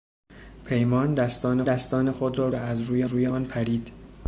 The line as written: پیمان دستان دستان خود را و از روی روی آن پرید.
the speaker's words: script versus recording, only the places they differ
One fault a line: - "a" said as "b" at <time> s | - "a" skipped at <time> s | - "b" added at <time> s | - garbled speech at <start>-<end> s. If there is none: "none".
none